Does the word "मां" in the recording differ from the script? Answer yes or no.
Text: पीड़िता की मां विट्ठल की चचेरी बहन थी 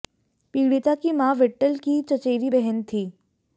no